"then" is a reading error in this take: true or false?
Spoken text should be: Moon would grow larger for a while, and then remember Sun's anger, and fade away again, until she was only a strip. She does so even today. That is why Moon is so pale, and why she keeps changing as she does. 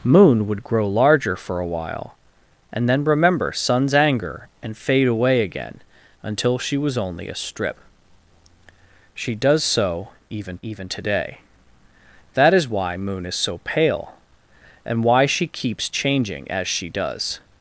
false